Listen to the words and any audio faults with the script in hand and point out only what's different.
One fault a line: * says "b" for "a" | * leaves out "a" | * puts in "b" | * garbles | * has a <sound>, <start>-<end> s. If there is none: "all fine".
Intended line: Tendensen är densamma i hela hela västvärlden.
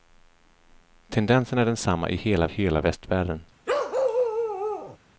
* has a bark, 3.7-5.0 s